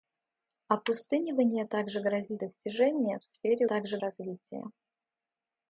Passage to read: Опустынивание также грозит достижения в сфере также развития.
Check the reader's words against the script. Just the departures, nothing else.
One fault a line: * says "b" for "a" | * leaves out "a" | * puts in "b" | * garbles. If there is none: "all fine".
all fine